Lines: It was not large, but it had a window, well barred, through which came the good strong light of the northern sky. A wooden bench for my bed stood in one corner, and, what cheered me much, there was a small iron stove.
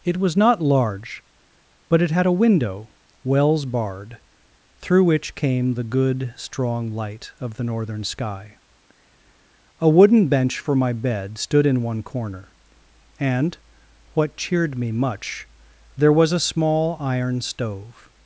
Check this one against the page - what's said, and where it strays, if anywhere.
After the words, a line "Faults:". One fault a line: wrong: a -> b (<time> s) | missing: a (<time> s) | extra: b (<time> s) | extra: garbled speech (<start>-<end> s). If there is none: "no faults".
It was not large, but it had a window, wells barred, through which came the good strong light of the northern sky. A wooden bench for my bed stood in one corner, and, what cheered me much, there was a small iron stove.
Faults:
wrong: well -> wells (3.2 s)